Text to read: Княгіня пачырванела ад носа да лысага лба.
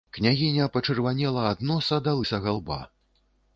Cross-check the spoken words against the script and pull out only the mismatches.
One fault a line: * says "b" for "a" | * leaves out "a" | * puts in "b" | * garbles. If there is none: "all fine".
all fine